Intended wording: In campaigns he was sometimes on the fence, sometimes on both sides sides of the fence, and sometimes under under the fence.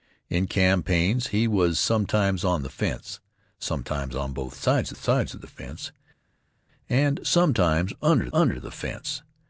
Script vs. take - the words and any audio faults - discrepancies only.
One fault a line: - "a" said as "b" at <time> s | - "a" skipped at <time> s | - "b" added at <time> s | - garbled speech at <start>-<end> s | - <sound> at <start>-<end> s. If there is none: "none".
none